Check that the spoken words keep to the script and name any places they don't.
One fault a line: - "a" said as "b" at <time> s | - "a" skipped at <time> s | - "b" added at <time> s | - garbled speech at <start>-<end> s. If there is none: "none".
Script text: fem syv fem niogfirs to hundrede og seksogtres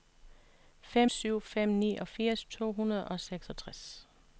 none